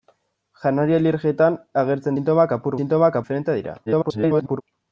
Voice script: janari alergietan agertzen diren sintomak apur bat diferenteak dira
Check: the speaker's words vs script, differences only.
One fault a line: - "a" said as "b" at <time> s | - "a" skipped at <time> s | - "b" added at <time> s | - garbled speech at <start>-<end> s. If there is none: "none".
- "diren" skipped at 2.2 s
- "bat" said as "sintomak" at 2.8 s
- garbled speech at 3.9-4.6 s